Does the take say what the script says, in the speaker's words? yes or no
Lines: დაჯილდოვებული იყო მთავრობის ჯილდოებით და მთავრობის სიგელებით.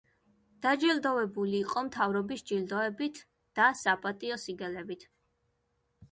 no